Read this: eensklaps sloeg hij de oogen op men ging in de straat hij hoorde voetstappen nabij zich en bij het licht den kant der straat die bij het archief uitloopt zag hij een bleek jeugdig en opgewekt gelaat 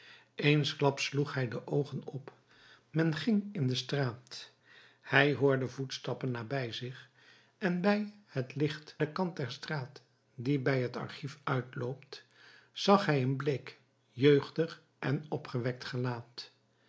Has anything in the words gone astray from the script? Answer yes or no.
no